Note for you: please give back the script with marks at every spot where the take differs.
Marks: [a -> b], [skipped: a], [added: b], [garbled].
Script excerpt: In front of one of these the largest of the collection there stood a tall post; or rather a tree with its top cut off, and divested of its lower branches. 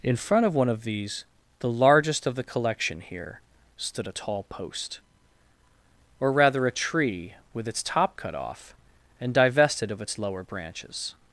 In front of one of these the largest of the collection [there -> here] stood a tall post; or rather a tree with its top cut off, and divested of its lower branches.